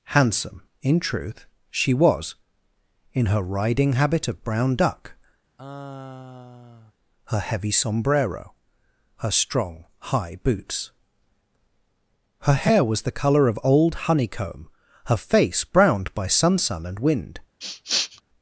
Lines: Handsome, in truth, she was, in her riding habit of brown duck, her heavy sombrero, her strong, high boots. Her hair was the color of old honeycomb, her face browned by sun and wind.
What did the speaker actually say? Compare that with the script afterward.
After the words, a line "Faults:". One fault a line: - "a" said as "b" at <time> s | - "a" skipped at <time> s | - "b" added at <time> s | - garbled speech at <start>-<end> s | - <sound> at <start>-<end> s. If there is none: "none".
Handsome, in truth, she was, in her riding habit of brown duck, her heavy sombrero, her strong, high boots. Her hair was the color of old honeycomb, her face browned by sun sun and wind.
Faults:
- sigh at 5.6-6.9 s
- "sun" added at 16.6 s
- sniff at 17.6-18.2 s